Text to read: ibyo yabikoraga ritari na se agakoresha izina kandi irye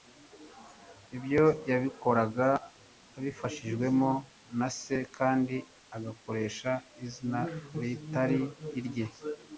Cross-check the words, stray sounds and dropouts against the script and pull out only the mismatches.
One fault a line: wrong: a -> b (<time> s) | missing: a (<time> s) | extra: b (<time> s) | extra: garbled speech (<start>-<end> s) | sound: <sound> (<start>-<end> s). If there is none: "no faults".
wrong: ritari -> abifashijwemo (3.2 s)
extra: kandi (5.2 s)
wrong: kandi -> ritari (7.8 s)